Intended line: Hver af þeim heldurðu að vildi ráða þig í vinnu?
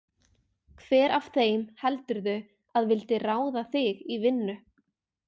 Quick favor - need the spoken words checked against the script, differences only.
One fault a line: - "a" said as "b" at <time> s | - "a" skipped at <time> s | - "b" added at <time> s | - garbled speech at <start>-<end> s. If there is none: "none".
none